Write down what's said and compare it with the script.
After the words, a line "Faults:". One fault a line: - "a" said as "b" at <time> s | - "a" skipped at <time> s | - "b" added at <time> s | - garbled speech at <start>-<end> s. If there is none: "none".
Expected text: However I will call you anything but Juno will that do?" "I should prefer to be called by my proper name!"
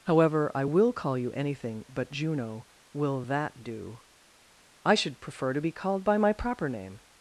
However I will call you anything but Juno will that do?" "I should prefer to be called by my proper name!"
Faults:
none